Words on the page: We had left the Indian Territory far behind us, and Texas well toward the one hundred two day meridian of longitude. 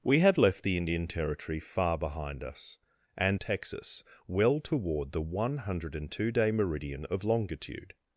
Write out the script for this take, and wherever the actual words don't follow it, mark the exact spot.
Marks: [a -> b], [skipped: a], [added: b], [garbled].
We had left the Indian Territory far behind us, and Texas well toward the one hundred two day meridian of longitude.